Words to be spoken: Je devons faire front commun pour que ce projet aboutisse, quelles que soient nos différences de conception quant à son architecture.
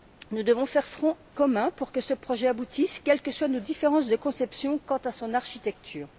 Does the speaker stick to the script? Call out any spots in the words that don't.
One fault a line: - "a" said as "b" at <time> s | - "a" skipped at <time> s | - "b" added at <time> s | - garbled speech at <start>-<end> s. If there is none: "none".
- "Je" said as "Nous" at 0.3 s